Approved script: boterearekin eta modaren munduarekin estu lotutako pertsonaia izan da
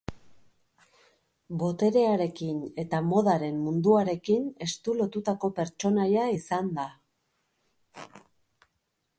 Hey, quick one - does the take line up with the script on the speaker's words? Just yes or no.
yes